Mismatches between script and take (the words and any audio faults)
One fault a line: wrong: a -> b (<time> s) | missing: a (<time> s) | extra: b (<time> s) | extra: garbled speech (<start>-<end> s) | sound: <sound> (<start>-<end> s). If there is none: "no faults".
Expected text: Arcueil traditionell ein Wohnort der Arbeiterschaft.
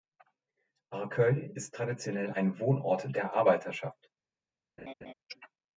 extra: ist (1.5 s)
sound: laugh (4.8-5.1 s)